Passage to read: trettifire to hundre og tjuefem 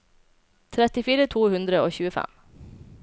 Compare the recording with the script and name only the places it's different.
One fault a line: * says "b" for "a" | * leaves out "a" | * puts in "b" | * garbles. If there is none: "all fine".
all fine